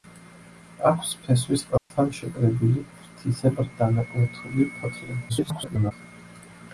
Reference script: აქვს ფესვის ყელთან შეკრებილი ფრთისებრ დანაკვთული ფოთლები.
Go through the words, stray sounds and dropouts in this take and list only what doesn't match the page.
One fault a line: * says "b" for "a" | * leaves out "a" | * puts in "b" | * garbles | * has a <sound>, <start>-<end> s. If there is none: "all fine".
* has a dropout, 1.8-1.9 s
* garbles